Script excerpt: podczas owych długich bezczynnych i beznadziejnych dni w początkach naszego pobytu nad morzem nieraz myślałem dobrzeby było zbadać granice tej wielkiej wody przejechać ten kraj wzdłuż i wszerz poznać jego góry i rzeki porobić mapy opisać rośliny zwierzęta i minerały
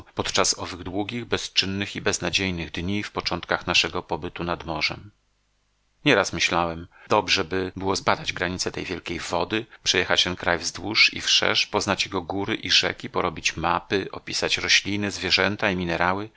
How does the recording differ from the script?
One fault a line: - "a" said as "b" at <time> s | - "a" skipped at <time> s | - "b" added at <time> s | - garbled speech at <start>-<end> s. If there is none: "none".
none